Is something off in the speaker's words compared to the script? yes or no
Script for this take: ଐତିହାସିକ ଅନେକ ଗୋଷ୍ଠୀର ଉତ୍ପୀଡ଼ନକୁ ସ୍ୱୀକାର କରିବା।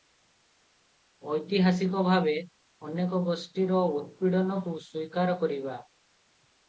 yes